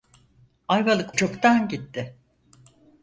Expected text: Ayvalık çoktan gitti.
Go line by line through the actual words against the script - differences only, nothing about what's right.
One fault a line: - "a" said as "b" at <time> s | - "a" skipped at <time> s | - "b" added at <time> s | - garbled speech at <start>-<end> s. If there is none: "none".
none